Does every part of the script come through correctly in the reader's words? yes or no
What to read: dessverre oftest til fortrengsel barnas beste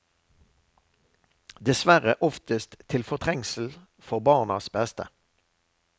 no